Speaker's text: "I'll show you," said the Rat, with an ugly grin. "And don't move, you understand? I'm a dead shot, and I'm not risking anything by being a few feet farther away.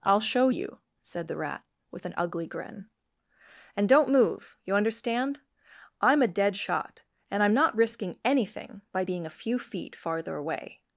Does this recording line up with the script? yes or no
yes